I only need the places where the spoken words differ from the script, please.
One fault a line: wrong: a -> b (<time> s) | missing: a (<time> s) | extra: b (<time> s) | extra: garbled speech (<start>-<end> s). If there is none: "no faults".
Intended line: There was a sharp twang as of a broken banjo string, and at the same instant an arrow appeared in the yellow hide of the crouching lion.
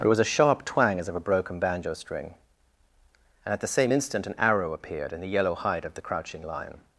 no faults